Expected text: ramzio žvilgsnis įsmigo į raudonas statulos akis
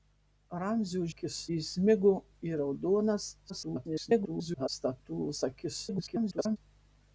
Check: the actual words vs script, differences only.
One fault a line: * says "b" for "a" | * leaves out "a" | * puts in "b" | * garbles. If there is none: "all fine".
* says "akis" for "žvilgsnis"
* garbles
* garbles